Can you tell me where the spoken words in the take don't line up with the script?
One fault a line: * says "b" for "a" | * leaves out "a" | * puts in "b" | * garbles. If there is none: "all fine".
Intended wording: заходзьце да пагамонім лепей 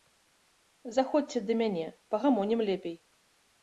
* puts in "мяне"